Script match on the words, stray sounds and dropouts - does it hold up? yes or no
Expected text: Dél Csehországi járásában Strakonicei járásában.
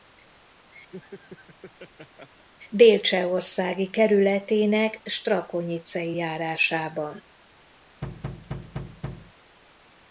no